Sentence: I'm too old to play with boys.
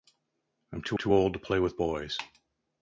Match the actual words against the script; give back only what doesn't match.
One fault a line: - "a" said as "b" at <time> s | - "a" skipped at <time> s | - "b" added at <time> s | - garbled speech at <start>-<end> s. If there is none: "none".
- "too" added at 0.9 s